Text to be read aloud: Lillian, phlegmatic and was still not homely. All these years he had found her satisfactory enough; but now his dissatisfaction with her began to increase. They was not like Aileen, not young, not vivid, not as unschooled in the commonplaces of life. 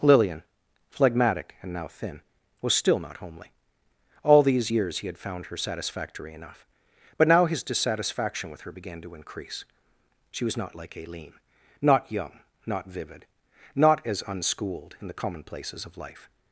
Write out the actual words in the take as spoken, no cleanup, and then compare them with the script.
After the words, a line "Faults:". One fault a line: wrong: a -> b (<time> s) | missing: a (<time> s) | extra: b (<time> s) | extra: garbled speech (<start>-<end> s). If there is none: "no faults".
Lillian, phlegmatic and now thin, was still not homely. All these years he had found her satisfactory enough; but now his dissatisfaction with her began to increase. She was not like Aileen, not young, not vivid, not as unschooled in the commonplaces of life.
Faults:
extra: now thin (1.7 s)
wrong: They -> She (10.3 s)